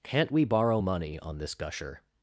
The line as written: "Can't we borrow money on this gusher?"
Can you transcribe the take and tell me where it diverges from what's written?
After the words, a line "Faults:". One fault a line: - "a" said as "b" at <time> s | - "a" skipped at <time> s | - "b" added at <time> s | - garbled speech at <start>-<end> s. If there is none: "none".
"Can't we borrow money on this gusher?"
Faults:
none